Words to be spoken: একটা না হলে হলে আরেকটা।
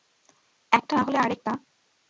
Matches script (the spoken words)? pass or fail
fail